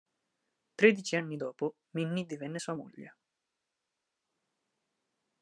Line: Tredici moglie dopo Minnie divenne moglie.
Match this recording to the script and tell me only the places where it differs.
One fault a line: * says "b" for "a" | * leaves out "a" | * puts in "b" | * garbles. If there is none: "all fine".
* says "anni" for "moglie"
* puts in "sua"